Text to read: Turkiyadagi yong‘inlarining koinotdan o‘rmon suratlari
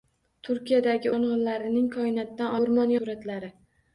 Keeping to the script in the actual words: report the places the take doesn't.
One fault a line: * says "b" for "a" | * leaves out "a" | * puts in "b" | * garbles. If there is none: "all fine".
all fine